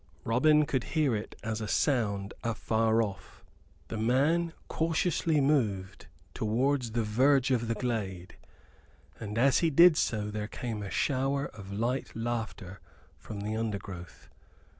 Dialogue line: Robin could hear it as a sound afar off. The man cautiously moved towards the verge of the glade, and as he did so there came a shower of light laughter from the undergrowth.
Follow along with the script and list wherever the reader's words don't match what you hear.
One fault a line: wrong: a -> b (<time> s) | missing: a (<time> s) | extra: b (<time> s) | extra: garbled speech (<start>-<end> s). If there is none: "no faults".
no faults